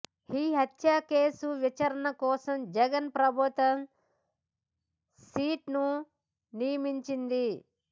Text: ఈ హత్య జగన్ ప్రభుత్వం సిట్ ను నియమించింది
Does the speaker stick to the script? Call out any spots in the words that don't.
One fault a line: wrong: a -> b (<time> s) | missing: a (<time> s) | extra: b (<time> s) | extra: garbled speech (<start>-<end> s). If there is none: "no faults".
extra: కేసు విచారణ కోసం (1.1 s)